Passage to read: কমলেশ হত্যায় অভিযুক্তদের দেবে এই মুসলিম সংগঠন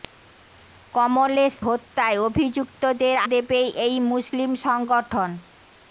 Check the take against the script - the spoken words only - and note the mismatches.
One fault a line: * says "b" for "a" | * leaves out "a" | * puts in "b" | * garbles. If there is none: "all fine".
all fine